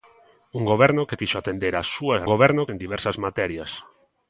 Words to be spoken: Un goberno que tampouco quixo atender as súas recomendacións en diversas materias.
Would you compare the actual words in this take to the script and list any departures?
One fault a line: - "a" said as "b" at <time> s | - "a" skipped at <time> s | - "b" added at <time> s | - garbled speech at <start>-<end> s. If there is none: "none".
- "tampouco" skipped at 1.2 s
- "recomendacións" said as "goberno" at 2.3 s